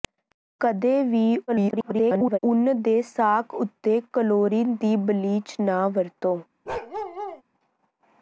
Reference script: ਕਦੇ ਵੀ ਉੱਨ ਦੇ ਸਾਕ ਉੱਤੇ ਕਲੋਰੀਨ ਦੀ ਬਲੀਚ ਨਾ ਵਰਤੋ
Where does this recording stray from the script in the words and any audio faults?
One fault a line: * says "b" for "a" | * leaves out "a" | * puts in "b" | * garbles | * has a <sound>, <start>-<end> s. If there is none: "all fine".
* garbles
* has a bark, 6.7-7.4 s